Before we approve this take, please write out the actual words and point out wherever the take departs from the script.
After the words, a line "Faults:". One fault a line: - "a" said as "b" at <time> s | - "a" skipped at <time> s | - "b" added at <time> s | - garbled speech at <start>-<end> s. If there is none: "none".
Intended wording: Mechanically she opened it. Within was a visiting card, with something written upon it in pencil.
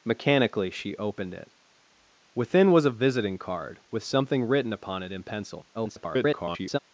Mechanically she opened it. Within was a visiting card, with something written upon it in pencil. [garbled]
Faults:
- garbled speech at 5.7-6.8 s